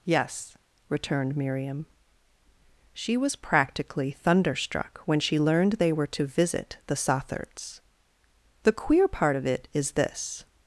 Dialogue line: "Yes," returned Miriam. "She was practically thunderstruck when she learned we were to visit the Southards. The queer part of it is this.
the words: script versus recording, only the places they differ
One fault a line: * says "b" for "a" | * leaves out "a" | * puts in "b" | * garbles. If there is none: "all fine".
* says "they" for "we"